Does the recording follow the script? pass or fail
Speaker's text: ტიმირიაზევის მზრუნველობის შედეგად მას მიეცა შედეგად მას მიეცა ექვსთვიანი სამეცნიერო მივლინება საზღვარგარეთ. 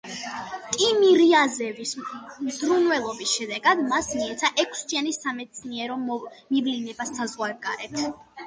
fail